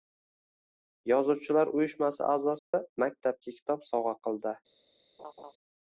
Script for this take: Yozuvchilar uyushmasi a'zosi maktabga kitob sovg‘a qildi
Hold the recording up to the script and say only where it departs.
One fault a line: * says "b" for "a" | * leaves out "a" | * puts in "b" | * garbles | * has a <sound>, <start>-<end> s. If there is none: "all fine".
* has a dropout, 2.6-2.7 s
* has a laugh, 5.2-5.5 s